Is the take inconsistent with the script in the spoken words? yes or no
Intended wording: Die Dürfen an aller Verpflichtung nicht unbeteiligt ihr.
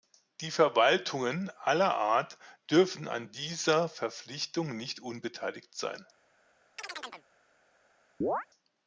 yes